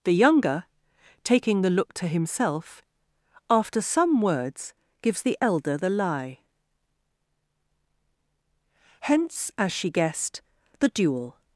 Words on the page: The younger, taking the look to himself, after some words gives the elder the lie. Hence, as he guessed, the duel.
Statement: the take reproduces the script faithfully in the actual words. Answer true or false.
false